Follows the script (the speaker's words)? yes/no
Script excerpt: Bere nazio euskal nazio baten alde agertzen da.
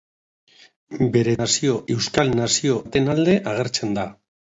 yes